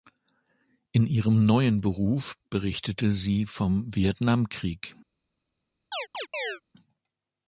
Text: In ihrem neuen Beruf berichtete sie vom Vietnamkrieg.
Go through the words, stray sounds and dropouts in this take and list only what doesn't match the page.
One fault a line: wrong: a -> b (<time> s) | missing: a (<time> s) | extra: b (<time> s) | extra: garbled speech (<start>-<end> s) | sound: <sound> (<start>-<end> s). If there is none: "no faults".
sound: chirp (5.9-6.6 s)